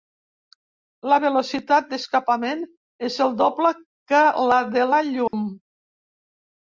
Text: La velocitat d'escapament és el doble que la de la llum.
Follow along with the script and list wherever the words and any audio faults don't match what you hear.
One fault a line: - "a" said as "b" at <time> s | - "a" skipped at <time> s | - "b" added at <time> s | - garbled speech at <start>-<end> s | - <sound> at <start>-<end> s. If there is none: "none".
- dropout at 5.3-5.3 s